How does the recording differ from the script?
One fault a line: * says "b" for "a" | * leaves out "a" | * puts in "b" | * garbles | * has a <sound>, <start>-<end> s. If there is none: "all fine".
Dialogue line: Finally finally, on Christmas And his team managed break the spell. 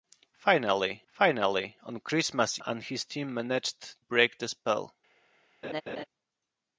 * has a laugh, 5.6-6.0 s